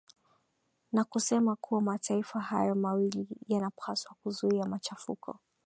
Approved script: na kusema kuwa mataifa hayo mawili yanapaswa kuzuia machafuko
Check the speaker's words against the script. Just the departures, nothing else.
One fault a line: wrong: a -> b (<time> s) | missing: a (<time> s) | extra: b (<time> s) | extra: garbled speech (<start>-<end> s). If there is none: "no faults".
no faults